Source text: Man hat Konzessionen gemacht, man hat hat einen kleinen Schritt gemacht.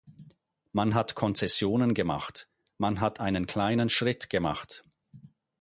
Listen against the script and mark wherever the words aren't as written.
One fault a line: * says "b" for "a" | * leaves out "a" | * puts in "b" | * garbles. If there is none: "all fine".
* leaves out "hat"